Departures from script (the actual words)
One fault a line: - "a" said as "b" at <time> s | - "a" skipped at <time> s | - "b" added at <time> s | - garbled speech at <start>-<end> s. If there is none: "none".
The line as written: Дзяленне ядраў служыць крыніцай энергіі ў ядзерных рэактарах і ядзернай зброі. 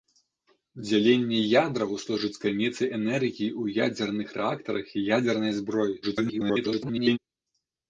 - garbled speech at 6.0-7.2 s